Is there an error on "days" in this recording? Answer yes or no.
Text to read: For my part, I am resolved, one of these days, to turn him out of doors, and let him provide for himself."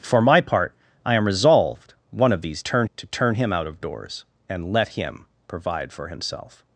yes